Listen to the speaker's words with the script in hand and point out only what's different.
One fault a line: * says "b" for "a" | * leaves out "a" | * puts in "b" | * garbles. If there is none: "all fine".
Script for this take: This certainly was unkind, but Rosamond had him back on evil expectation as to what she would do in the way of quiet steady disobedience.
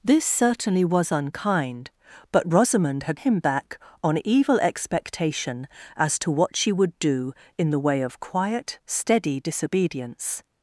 all fine